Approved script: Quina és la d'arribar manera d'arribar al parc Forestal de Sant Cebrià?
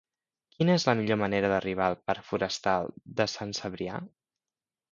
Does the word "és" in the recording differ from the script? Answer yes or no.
no